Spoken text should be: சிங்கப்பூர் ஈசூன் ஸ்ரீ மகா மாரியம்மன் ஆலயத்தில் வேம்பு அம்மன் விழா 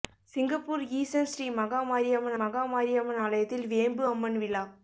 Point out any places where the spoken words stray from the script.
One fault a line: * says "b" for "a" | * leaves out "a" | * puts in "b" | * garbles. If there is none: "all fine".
* puts in "மகா மாரியம்மன்"